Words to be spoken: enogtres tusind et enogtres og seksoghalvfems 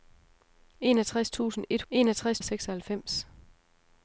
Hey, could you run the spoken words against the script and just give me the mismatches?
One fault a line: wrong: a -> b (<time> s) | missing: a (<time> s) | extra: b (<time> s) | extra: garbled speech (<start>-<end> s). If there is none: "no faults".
no faults